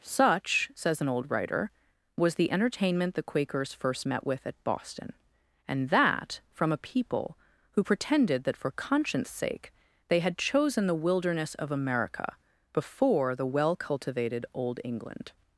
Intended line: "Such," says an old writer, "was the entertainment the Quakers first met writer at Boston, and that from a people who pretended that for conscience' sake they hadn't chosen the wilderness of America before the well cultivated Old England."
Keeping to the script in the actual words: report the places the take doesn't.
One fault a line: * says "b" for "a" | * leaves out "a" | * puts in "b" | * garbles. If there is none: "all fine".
* says "with" for "writer"
* says "had" for "hadn't"